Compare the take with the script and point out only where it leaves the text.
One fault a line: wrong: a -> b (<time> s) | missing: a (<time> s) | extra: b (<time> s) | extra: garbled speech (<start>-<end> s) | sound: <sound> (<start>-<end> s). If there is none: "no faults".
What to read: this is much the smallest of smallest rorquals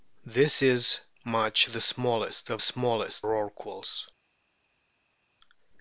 no faults